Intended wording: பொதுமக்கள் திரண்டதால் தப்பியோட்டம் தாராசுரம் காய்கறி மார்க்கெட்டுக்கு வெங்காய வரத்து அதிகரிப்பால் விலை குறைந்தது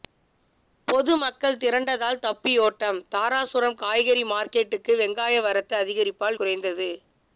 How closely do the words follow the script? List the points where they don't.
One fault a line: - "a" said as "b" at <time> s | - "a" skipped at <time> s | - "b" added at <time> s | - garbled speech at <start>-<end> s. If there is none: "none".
- "விலை" skipped at 6.4 s